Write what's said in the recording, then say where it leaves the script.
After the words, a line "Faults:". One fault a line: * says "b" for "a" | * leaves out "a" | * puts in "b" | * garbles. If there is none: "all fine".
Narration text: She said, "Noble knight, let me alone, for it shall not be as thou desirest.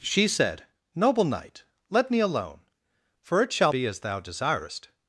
She said, "Noble knight, let me alone, for it shall be as thou desirest.
Faults:
* leaves out "not"